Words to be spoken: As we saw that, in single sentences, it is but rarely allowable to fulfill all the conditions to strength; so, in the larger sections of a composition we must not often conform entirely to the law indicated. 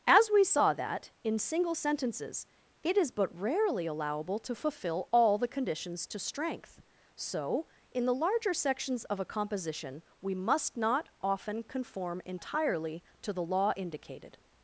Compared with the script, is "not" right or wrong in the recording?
right